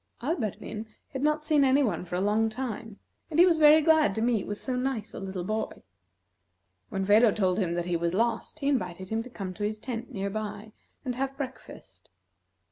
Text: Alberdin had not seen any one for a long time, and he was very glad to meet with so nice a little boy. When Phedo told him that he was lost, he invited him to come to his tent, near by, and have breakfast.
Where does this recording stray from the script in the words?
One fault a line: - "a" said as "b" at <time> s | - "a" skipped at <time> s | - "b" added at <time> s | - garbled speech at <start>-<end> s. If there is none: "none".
none